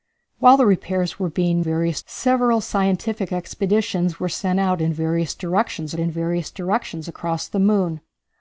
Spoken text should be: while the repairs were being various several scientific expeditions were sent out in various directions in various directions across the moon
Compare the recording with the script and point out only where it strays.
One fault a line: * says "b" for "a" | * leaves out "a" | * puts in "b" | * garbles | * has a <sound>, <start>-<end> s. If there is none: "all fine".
all fine